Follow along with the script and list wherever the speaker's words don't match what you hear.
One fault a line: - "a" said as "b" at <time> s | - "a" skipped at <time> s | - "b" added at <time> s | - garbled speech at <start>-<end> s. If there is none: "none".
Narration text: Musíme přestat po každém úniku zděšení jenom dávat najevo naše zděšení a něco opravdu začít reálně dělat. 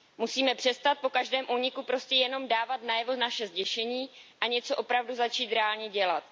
- "zděšení" said as "prostě" at 1.8 s